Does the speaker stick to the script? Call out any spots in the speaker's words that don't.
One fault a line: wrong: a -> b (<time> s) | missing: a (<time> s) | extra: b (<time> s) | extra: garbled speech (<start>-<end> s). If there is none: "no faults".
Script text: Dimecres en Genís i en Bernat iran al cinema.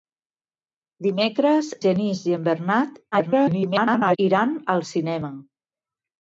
missing: en (1.7 s)
extra: garbled speech (3.1-4.2 s)